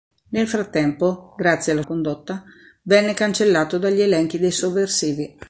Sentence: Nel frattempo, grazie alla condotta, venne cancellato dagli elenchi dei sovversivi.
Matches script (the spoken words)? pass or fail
pass